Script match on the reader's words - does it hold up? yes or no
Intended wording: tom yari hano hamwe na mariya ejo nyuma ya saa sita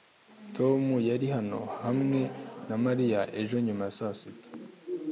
yes